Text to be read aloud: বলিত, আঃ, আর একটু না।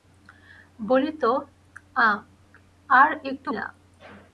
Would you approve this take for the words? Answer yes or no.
yes